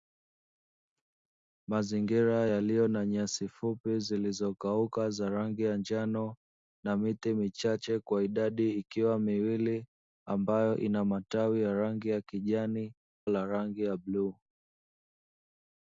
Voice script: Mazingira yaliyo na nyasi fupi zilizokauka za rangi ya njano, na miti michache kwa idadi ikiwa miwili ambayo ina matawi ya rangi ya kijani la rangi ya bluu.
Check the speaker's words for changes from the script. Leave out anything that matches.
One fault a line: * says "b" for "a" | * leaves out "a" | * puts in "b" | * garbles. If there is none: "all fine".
all fine